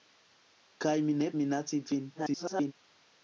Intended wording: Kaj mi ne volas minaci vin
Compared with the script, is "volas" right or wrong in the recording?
wrong